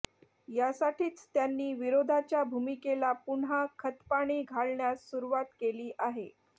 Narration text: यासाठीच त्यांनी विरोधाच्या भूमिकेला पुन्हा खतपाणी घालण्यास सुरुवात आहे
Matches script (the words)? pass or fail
fail